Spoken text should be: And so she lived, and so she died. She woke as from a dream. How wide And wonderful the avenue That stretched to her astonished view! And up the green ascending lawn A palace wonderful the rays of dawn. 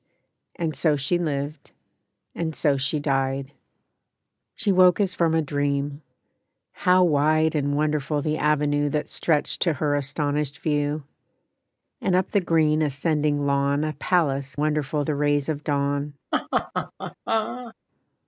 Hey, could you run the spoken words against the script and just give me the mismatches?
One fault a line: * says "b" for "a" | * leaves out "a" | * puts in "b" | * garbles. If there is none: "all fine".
all fine